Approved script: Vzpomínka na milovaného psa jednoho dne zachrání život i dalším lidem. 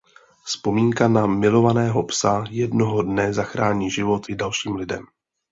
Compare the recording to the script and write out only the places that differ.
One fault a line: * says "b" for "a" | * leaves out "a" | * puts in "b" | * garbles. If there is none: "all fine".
all fine